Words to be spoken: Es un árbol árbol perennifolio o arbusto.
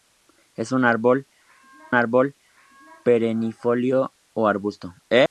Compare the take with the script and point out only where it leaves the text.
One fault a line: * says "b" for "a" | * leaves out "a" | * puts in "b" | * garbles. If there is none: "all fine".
all fine